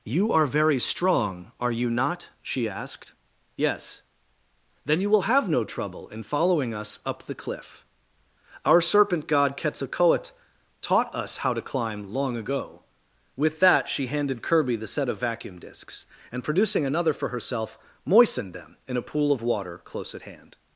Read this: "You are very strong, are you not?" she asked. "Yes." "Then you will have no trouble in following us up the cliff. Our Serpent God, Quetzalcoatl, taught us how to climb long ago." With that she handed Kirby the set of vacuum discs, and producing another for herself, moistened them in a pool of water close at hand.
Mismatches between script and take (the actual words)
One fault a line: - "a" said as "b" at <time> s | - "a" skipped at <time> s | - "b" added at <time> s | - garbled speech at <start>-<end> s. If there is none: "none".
none